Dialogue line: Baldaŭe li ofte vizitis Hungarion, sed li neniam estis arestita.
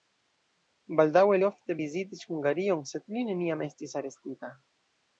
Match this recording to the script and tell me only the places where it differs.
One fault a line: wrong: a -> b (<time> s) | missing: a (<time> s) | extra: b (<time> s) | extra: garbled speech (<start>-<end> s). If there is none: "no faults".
missing: li (1.4 s)